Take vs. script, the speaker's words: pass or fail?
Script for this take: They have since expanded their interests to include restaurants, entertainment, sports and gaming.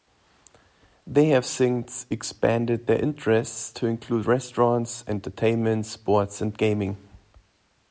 pass